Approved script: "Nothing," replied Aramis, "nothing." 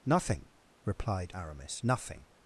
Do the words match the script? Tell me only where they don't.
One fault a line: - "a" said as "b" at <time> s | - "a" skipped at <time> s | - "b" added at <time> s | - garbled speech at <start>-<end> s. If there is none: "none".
none